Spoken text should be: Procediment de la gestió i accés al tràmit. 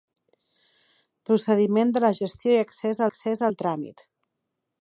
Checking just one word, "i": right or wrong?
right